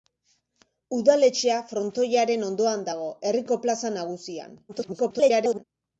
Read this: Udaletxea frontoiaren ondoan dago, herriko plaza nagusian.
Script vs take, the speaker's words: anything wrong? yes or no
yes